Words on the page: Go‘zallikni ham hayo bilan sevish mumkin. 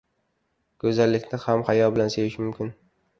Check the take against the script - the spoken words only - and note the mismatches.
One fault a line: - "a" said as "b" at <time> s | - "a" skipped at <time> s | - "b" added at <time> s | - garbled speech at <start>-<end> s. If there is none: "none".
none